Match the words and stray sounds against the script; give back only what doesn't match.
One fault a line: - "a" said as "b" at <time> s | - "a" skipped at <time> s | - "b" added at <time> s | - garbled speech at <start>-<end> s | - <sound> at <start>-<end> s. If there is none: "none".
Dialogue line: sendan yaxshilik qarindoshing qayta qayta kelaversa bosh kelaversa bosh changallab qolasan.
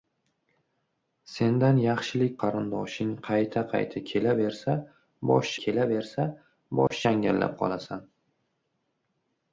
- dropout at 6.9-6.9 s